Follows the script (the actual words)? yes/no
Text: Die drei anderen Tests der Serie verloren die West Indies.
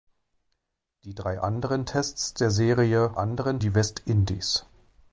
no